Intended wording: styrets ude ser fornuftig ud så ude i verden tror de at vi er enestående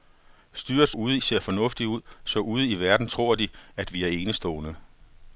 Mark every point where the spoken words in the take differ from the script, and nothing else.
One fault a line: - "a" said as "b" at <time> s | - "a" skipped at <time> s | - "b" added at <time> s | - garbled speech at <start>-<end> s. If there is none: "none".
none